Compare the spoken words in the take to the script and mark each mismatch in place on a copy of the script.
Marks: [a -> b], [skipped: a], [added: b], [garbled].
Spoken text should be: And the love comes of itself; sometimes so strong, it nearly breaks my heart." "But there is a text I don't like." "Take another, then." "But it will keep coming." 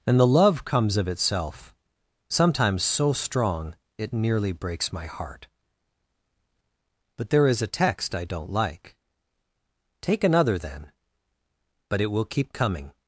And the love comes of itself; sometimes so strong, it nearly breaks my heart." "But there is a text I don't like." "Take another, then." "But it will keep coming."